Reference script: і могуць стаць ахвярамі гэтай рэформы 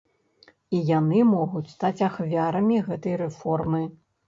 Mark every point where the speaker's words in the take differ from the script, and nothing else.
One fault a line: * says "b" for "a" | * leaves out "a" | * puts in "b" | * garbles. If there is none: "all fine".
* puts in "яны"